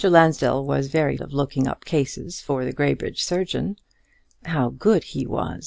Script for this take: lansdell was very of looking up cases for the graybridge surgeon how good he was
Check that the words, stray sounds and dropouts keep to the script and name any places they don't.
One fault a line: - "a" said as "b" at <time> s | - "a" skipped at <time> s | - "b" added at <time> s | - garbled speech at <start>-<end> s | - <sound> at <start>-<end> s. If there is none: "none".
none